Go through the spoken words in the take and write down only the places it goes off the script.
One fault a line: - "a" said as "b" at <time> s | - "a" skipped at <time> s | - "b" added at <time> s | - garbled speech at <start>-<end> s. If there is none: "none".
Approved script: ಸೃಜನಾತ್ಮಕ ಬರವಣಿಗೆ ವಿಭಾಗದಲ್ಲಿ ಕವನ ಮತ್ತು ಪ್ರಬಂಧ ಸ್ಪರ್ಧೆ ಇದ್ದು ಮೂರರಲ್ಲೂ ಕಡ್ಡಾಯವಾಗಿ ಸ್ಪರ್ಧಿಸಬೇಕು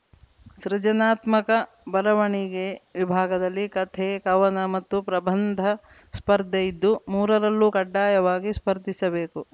- "ಕಥೆ" added at 3.8 s